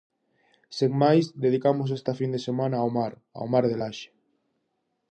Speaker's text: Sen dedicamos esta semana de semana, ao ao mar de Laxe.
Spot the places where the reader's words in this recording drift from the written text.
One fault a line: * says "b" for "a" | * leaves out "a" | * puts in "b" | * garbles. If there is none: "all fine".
* puts in "máis"
* says "fin" for "semana"
* puts in "mar"